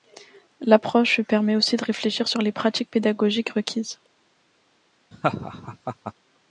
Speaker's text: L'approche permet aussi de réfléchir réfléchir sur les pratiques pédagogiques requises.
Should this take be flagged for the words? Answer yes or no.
yes